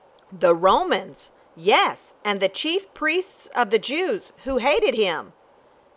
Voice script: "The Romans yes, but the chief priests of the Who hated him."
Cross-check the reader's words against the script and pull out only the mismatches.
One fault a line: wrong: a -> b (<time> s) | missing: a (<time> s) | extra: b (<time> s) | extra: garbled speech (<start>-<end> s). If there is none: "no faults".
wrong: but -> and (2.2 s)
extra: Jews (3.8 s)